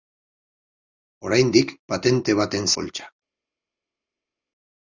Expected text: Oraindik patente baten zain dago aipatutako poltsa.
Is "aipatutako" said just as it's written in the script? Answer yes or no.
no